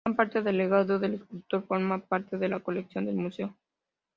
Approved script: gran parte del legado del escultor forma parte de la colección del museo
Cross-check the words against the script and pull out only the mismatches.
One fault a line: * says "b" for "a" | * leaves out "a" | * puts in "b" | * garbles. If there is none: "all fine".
all fine